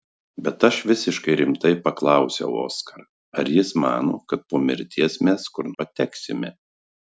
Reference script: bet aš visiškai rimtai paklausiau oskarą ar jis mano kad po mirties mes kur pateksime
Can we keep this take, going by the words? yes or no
yes